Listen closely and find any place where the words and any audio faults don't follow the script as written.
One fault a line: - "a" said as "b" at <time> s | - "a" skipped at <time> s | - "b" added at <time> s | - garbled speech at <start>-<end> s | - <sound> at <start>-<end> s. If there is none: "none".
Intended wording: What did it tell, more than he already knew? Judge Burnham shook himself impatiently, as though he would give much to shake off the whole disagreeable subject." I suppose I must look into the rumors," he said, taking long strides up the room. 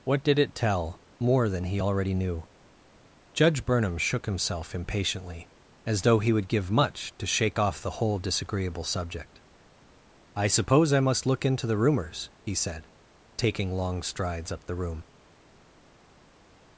none